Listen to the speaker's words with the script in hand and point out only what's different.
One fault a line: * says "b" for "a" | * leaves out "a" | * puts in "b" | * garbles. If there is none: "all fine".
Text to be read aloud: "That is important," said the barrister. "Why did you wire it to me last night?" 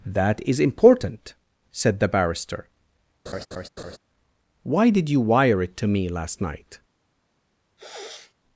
all fine